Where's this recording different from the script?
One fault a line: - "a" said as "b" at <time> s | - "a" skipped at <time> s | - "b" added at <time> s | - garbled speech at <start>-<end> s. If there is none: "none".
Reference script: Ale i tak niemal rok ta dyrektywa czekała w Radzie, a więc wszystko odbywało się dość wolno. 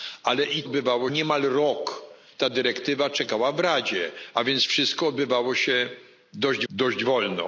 - "tak" said as "odbywało" at 0.6 s
- "dość" added at 6.7 s